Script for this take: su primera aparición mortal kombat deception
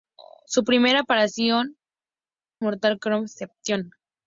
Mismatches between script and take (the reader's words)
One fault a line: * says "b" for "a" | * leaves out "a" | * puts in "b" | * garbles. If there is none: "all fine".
all fine